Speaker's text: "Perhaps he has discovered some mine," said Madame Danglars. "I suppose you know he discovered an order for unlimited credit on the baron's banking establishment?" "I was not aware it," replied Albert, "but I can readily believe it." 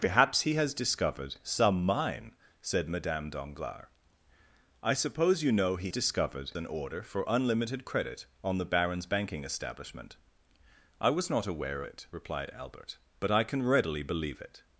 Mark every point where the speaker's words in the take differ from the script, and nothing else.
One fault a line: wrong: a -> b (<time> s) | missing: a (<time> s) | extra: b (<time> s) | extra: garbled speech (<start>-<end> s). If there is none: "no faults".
no faults